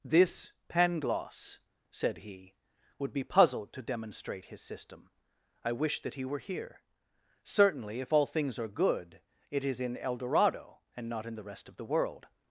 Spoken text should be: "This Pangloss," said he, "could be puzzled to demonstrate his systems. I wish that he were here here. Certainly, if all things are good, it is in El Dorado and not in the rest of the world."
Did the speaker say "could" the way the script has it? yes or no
no